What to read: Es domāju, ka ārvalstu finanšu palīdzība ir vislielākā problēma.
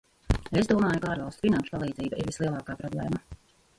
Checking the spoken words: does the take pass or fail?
pass